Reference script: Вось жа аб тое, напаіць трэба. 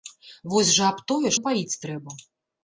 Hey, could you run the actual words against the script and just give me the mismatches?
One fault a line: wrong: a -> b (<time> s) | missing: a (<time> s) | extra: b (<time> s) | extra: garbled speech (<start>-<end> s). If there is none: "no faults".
no faults